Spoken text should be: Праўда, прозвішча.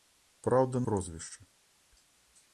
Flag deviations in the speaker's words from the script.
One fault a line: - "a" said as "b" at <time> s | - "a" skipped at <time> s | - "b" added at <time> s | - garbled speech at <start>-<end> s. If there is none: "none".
none